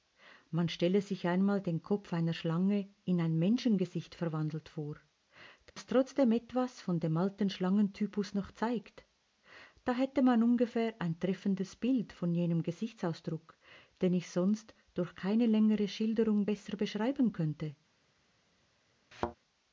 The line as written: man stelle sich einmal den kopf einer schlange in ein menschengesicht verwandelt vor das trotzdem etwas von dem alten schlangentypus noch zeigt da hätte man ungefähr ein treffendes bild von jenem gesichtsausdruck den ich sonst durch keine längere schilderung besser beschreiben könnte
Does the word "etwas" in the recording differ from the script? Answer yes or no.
no